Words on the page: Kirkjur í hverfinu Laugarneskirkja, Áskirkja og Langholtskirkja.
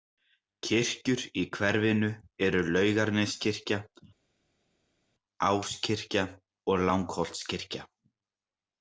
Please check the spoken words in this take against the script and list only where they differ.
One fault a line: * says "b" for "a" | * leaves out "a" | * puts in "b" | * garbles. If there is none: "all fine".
* puts in "eru"